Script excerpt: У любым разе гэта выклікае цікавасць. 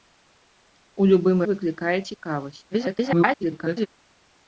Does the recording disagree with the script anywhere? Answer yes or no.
yes